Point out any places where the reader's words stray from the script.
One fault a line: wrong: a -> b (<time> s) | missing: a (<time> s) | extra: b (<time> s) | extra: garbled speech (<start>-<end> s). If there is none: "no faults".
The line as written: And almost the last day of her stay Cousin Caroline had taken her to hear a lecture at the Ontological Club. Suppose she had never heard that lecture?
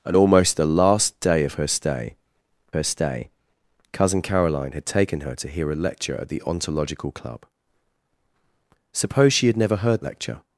extra: her stay (2.7 s)
missing: that (10.0 s)